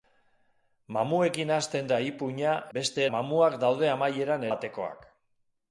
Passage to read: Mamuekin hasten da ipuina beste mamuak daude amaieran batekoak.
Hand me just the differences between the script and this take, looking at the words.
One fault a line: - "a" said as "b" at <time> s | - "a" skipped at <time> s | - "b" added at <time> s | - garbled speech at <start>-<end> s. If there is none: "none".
none